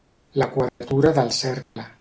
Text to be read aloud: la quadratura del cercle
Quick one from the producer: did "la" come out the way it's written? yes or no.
yes